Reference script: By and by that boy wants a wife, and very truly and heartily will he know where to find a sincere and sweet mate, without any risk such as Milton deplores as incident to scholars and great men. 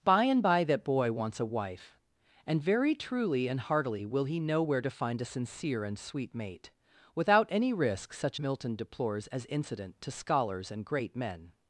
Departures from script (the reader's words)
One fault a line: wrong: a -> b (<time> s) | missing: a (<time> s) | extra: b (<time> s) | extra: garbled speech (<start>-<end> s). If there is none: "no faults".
missing: as (8.4 s)